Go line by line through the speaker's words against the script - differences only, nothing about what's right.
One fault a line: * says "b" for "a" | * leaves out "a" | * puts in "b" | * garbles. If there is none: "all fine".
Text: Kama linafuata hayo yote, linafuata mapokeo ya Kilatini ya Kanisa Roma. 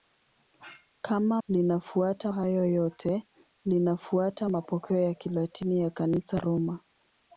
all fine